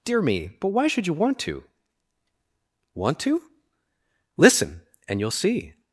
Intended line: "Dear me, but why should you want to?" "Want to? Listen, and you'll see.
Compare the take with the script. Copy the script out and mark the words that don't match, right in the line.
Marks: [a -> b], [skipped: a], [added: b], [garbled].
"Dear me, but why should you want to?" "Want to? Listen, and you'll see.